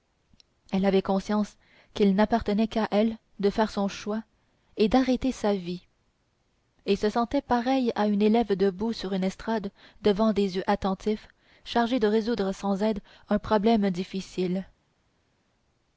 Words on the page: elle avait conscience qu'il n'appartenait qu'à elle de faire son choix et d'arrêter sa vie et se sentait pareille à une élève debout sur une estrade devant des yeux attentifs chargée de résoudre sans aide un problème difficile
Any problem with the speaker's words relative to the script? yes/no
no